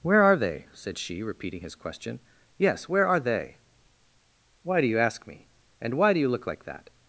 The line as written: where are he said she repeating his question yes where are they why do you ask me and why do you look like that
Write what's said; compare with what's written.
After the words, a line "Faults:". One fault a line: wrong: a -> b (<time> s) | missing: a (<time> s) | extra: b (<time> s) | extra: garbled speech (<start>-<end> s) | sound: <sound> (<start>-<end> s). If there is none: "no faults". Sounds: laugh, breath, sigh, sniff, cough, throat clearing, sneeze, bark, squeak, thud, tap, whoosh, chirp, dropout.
where are they said she repeating his question yes where are they why do you ask me and why do you look like that
Faults:
wrong: he -> they (0.3 s)